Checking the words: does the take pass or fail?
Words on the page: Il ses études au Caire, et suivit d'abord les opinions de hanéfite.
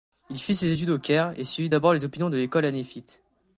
fail